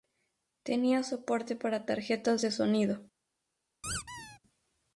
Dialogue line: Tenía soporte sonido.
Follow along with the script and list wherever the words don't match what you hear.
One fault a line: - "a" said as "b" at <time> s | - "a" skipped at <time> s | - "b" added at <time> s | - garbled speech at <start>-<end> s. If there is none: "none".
- "para tarjetas de" added at 1.6 s